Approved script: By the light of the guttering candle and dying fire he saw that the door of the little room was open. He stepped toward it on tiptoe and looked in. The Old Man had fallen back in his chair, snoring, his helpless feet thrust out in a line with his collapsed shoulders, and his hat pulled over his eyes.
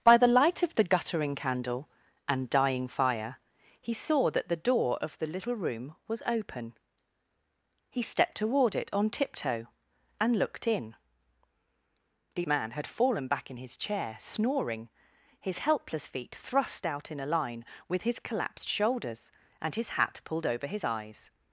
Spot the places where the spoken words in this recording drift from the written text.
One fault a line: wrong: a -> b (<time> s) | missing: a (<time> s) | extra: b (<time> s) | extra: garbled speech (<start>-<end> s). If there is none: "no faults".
missing: Old (12.5 s)